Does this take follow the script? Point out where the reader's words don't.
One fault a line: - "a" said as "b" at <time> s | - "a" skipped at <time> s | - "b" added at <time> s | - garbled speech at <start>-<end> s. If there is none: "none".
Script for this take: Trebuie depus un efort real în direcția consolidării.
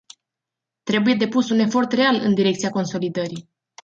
none